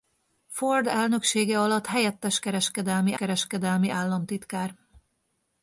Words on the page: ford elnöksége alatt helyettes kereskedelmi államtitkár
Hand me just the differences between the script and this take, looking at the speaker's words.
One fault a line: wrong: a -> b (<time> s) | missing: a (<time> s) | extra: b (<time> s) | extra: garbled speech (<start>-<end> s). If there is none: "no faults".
extra: kereskedelmi (3.1 s)